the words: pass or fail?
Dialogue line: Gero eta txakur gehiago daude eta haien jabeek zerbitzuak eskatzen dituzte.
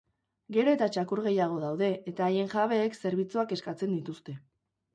pass